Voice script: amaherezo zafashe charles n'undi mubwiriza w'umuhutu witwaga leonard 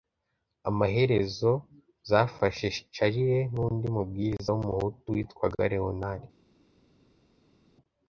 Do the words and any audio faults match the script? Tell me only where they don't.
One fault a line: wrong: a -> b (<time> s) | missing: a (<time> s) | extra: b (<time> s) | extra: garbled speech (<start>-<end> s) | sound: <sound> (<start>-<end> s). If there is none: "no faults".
no faults